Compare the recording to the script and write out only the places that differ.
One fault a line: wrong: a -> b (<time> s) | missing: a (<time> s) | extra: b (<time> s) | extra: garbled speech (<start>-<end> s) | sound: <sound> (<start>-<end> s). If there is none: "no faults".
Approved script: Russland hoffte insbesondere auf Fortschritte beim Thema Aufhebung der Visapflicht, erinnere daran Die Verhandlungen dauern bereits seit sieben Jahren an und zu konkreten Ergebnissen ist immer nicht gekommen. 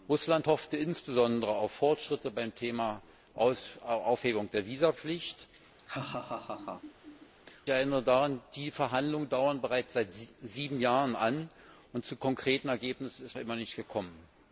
sound: laugh (5.8-7.3 s)